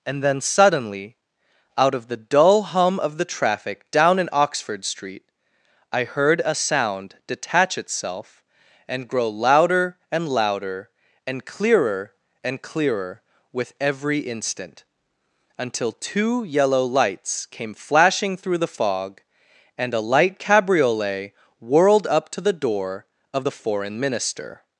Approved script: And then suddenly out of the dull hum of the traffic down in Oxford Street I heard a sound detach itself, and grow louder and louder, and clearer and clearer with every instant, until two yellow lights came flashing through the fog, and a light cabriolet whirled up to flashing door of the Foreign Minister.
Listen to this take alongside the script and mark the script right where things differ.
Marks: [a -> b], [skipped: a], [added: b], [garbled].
And then suddenly out of the dull hum of the traffic down in Oxford Street I heard a sound detach itself, and grow louder and louder, and clearer and clearer with every instant, until two yellow lights came flashing through the fog, and a light cabriolet whirled up to [flashing -> the] door of the Foreign Minister.